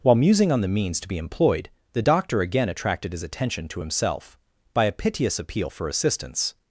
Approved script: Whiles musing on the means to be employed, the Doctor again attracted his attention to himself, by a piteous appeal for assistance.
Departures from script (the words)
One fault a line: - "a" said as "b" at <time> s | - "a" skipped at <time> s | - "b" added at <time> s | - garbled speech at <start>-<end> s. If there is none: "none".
- "Whiles" said as "While" at 0.0 s